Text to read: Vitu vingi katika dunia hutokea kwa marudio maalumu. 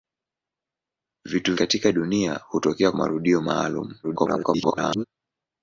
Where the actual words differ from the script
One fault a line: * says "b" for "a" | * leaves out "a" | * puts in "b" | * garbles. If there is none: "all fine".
* leaves out "vingi"
* leaves out "kwa"
* garbles